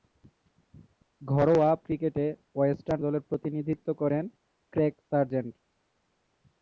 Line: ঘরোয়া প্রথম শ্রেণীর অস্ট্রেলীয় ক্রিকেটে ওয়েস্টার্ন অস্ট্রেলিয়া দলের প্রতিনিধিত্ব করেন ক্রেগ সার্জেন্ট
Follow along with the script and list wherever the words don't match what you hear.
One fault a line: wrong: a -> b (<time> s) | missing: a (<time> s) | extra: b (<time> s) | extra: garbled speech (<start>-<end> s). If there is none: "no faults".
missing: প্রথম শ্রেণীর অস্ট্রেলীয় (1.7 s)
missing: অস্ট্রেলিয়া (3.0 s)